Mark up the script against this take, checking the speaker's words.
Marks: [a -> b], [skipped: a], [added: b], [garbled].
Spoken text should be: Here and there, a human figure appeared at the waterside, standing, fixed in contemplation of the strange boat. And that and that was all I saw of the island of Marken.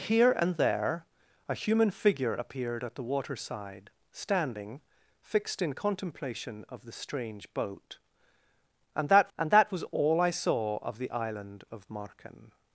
Here and there, a human figure appeared at the waterside, standing, fixed in contemplation of the strange boat. And that and that was all I saw of the island of Marken.